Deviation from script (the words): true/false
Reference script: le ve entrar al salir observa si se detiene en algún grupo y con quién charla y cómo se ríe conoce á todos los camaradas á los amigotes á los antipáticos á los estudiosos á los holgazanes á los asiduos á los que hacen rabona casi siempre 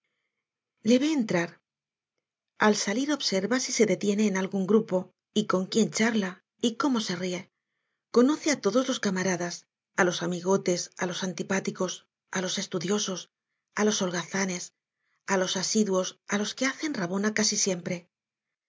false